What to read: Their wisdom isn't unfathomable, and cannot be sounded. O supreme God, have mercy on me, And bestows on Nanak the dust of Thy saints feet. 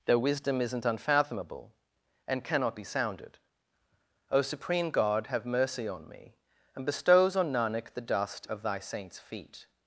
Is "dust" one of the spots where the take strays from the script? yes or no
no